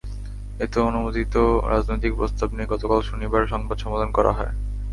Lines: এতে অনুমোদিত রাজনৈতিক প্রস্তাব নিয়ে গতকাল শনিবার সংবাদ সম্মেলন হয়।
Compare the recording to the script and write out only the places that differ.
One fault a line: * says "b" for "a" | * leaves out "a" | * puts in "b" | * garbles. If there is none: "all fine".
* puts in "করা"